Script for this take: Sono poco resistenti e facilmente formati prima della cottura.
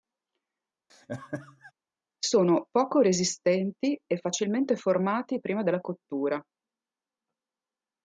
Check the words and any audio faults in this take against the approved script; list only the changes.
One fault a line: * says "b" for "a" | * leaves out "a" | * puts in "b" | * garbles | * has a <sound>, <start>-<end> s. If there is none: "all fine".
* has a laugh, 0.9-1.7 s